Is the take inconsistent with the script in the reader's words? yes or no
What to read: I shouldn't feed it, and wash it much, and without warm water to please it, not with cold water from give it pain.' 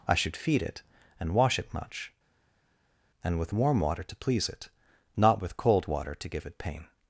yes